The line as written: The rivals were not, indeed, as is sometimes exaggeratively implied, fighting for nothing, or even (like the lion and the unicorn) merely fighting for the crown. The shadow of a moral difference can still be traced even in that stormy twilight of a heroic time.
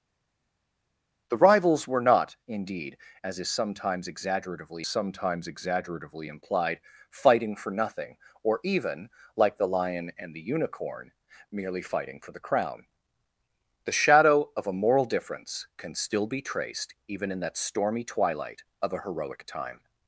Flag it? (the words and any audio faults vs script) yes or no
yes